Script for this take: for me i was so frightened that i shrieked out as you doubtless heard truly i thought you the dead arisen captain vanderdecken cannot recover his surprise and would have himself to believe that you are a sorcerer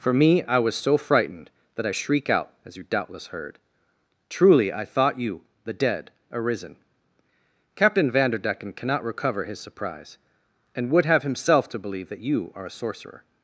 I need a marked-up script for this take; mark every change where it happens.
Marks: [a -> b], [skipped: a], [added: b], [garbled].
for me i was so frightened that i [shrieked -> shriek] out as you doubtless heard truly i thought you the dead arisen captain vanderdecken cannot recover his surprise and would have himself to believe that you are a sorcerer